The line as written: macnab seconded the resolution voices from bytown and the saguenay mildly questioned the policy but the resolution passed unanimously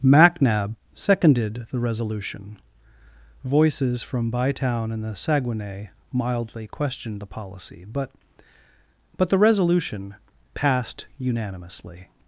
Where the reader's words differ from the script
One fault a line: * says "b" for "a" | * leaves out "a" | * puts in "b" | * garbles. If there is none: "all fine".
* puts in "but"